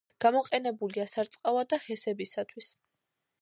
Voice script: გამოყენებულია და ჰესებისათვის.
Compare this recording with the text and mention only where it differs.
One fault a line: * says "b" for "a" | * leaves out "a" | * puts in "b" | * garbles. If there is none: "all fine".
* puts in "სარწყავად"